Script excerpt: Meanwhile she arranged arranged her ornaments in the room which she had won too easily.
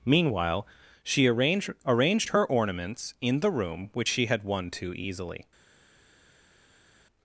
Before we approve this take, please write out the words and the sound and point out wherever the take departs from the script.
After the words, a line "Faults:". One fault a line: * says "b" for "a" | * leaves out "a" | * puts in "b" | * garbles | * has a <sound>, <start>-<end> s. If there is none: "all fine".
Meanwhile she arranged arranged her ornaments in the room which she had won too easily.
Faults:
all fine